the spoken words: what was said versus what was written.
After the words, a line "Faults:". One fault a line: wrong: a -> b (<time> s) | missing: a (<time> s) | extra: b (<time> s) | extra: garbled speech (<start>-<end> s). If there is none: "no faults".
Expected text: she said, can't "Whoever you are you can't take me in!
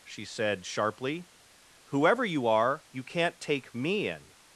she said, sharply "Whoever you are you can't take me in!
Faults:
wrong: can't -> sharply (0.7 s)